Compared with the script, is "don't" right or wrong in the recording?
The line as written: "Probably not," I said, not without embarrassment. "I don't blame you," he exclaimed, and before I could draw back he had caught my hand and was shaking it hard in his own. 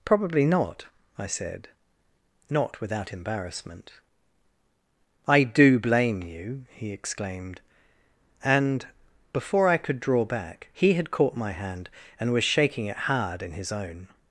wrong